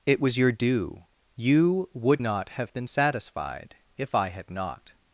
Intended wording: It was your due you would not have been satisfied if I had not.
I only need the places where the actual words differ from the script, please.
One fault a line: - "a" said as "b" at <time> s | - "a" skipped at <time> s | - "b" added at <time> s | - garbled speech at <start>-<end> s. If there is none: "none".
none